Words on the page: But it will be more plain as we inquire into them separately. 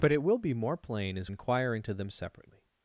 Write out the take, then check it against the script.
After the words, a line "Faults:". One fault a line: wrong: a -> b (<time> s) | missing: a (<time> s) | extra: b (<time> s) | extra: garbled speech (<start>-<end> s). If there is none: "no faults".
But it will be more plain as inquire into them separately.
Faults:
missing: we (1.3 s)